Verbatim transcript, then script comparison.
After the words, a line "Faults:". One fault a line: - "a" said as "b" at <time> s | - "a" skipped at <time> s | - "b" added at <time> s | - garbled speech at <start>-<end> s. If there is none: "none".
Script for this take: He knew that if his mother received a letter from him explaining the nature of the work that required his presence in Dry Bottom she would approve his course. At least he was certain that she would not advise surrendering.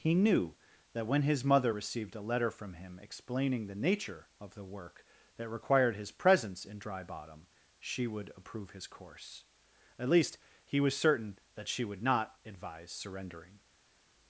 He knew that when his mother received a letter from him explaining the nature of the work that required his presence in Dry Bottom she would approve his course. At least he was certain that she would not advise surrendering.
Faults:
- "if" said as "when" at 1.1 s